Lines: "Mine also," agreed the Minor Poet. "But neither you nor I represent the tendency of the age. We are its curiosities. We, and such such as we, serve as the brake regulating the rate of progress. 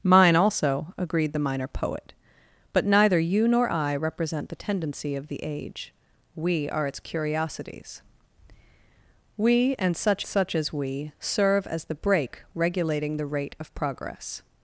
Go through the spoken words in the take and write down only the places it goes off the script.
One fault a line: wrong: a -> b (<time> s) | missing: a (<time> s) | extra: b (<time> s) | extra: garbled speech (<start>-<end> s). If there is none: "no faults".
no faults